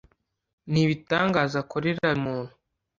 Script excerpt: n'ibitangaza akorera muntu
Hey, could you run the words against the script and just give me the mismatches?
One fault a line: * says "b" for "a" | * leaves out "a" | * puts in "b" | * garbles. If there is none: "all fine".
all fine